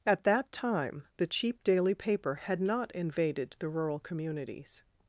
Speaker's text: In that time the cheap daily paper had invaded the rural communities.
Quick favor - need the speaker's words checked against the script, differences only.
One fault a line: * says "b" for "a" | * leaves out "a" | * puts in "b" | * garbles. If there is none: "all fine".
* says "At" for "In"
* puts in "not"